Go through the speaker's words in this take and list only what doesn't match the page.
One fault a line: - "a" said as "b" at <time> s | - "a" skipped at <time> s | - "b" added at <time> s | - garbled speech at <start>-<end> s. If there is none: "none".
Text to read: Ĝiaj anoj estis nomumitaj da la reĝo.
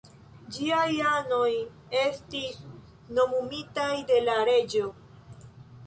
- "da" said as "de" at 4.1 s